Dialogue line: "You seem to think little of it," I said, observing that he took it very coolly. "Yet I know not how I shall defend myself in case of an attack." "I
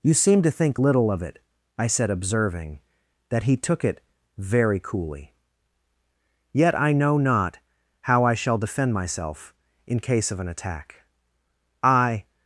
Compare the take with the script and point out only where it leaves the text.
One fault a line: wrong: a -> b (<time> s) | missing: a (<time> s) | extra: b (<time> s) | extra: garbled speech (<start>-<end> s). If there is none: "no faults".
no faults